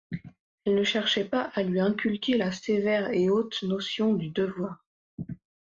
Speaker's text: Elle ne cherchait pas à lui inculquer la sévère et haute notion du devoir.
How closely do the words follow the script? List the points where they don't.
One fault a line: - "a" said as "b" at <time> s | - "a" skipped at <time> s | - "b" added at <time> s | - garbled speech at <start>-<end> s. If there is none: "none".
none